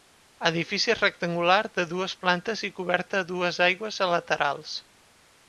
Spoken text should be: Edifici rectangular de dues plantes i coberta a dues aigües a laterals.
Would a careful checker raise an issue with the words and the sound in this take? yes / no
no